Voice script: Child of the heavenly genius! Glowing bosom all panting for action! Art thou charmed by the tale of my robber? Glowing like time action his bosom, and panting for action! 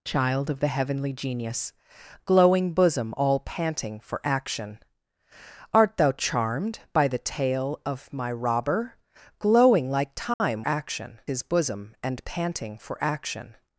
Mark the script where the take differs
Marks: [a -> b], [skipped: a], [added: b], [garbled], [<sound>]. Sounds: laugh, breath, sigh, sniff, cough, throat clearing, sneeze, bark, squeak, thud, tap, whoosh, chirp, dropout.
Child of the heavenly genius! Glowing bosom all panting for action! Art thou charmed by the tale of my robber? Glowing like time [dropout] action his bosom, and panting for action!